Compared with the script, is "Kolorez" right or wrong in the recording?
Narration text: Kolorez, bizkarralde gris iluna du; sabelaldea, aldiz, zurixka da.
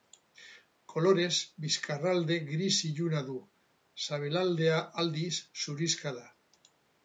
right